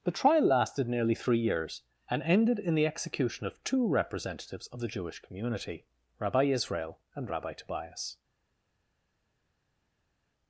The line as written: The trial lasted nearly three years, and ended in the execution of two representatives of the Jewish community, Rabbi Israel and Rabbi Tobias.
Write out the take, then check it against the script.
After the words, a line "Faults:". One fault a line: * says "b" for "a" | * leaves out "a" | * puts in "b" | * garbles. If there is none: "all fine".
The trial lasted nearly three years, and ended in the execution of two representatives of the Jewish community, Rabbi Israel and Rabbi Tobias.
Faults:
all fine